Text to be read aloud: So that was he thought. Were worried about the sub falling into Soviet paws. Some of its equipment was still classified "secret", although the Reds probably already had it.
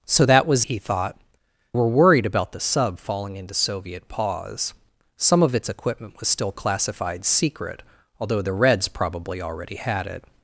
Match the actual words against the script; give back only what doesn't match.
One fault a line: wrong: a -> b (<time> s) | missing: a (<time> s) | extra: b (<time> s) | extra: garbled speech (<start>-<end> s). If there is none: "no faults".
no faults